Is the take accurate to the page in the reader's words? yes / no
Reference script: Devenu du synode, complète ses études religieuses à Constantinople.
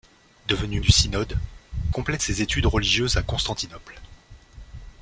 yes